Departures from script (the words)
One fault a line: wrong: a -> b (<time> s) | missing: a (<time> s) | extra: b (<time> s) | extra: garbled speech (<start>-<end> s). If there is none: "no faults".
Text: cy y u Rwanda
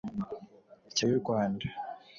no faults